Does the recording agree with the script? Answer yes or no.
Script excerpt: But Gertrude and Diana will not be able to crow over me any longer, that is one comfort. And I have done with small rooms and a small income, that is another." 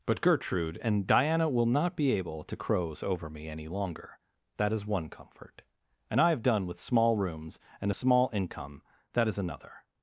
no